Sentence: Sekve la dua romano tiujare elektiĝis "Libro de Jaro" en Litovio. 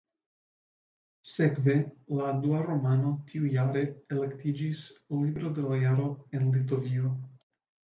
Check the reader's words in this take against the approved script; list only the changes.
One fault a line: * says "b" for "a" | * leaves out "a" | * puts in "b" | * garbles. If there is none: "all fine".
* puts in "la"